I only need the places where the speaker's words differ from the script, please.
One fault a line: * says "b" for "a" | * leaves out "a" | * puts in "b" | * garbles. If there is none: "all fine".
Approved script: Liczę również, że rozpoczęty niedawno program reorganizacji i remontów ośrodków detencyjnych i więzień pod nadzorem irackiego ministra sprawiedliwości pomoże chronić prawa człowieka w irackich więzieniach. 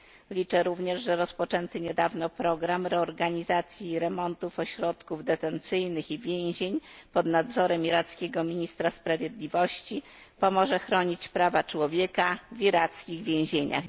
all fine